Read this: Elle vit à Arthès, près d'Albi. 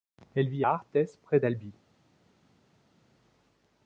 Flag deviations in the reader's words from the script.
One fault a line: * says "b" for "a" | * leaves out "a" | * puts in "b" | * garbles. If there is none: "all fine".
all fine